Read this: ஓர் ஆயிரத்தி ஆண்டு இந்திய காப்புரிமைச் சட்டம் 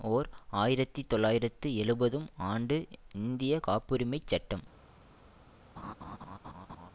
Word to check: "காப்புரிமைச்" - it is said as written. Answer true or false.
true